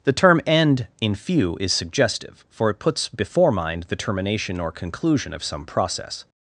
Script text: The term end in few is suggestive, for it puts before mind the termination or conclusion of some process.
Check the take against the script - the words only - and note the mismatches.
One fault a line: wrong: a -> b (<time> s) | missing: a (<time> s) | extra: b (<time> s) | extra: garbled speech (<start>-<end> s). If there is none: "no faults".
no faults